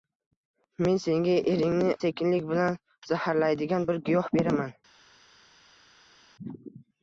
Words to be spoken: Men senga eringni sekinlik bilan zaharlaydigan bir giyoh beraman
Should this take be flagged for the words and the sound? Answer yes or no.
no